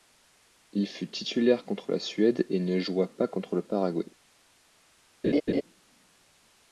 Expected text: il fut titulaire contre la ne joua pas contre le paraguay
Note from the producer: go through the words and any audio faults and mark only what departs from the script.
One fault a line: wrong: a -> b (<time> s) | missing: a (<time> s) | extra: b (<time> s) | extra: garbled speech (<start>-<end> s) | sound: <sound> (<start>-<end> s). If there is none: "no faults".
extra: suède et (2.0 s)
sound: laugh (5.2-5.6 s)